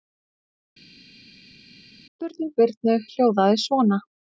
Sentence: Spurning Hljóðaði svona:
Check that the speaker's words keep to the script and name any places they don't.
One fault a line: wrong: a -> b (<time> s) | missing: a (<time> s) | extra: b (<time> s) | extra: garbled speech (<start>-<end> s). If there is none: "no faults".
extra: Birnu (2.6 s)